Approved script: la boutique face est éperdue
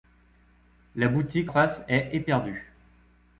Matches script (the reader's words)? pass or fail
pass